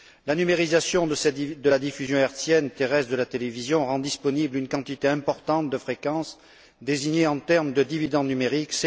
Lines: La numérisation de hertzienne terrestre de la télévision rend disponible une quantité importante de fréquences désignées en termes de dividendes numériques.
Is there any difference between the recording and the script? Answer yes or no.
yes